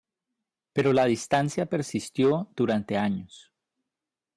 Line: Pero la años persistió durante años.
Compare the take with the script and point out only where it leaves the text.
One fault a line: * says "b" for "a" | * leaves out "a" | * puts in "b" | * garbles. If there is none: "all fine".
* says "distancia" for "años"